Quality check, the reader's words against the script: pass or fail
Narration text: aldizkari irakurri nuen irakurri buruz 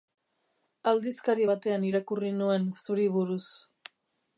fail